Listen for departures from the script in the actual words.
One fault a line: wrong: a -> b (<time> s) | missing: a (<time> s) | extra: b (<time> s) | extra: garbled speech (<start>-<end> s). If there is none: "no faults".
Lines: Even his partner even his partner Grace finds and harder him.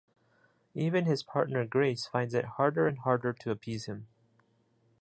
wrong: even his partner Grace finds -> Grace finds it harder (1.6 s)
extra: to appease (3.3 s)